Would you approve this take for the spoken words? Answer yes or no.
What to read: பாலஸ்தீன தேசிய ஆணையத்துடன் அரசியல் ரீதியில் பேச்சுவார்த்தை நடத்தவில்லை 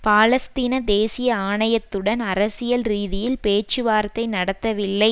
yes